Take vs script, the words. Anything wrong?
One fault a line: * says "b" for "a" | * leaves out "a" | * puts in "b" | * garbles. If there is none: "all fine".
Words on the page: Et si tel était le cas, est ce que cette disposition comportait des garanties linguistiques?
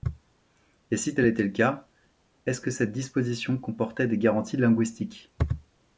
all fine